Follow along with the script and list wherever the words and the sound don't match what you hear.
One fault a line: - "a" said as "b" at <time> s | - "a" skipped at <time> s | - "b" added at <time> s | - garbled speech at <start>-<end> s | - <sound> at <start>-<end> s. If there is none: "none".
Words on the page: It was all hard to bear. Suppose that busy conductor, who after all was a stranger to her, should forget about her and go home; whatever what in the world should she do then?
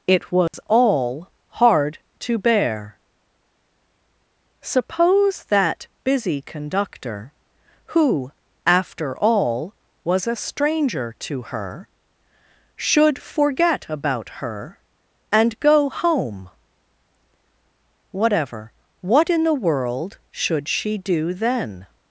- dropout at 0.5-0.5 s